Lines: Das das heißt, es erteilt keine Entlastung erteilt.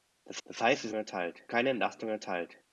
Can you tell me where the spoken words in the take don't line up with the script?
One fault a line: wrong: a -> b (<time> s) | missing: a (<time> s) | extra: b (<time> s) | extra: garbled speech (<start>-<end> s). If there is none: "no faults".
no faults